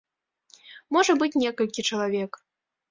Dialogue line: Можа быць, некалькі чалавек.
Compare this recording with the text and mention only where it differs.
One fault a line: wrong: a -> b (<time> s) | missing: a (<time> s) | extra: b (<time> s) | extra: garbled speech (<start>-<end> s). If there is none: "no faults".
no faults